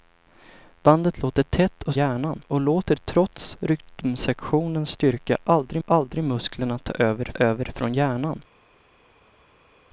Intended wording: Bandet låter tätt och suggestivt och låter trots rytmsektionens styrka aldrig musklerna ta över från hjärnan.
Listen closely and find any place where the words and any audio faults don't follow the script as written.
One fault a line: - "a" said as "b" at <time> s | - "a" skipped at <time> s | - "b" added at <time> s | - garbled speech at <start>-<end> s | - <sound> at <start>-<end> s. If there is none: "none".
- "suggestivt" said as "hjärnan" at 1.9 s
- "aldrig" added at 5.8 s
- "över" added at 7.3 s